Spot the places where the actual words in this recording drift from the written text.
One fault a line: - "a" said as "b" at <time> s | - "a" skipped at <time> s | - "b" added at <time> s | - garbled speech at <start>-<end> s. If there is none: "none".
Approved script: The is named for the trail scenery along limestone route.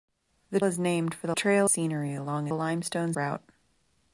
none